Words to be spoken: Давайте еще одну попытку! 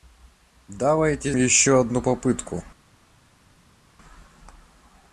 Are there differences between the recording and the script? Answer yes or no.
no